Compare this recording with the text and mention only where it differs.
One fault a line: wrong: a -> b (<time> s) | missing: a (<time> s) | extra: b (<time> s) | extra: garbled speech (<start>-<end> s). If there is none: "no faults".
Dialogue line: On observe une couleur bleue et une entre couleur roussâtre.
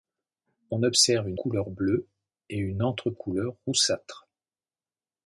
no faults